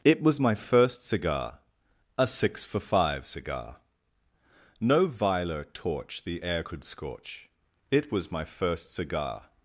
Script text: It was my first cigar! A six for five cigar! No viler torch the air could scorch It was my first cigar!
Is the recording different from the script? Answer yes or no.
no